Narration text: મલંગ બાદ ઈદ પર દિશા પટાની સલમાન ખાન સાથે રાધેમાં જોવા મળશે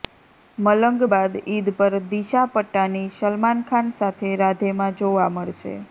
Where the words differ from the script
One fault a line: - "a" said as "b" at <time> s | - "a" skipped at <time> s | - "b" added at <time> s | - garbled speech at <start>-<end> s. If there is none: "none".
none